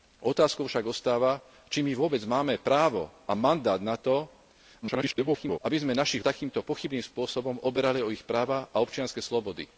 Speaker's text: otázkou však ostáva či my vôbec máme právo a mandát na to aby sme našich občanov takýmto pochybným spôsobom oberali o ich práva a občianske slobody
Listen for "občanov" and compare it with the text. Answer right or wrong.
wrong